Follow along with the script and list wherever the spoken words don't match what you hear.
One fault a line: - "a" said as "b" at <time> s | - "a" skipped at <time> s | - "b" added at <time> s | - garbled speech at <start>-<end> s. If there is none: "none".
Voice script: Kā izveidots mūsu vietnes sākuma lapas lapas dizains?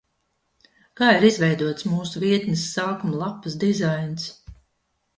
- "ir" added at 1.2 s
- "lapas" skipped at 3.6 s